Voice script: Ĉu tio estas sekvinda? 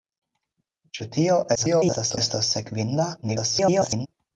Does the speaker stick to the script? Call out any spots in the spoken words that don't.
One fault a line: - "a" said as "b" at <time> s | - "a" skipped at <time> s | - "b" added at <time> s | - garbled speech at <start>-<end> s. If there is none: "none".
- garbled speech at 1.6-2.2 s
- garbled speech at 3.2-4.1 s